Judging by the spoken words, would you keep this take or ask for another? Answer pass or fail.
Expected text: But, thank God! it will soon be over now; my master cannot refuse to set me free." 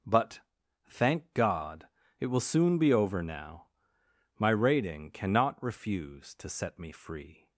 fail